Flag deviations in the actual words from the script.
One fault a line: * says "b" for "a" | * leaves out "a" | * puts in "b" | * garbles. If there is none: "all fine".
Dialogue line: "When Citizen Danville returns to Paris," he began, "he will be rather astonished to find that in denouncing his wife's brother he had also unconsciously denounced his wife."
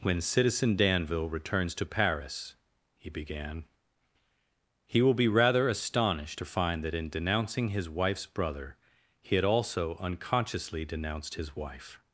all fine